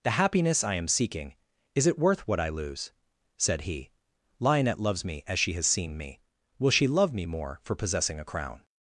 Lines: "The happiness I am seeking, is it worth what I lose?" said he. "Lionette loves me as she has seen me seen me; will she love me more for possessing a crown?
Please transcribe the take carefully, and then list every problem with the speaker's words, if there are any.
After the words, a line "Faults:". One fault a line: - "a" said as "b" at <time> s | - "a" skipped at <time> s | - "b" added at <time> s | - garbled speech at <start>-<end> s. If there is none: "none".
"The happiness I am seeking, is it worth what I lose?" said he. "Lionette loves me as she has seen me; will she love me more for possessing a crown?
Faults:
- "seen me" skipped at 6.2 s